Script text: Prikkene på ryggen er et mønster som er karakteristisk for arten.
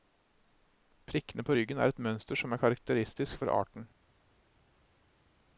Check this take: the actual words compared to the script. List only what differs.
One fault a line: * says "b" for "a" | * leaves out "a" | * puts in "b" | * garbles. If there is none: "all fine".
all fine